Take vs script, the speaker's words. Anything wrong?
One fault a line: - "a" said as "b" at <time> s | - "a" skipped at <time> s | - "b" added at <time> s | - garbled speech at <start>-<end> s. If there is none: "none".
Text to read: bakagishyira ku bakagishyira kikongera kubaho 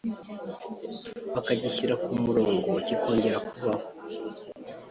- "bakagishyira" said as "murongo" at 2.2 s